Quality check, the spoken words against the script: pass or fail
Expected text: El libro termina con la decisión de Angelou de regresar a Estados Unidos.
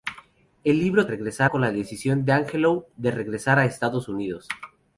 fail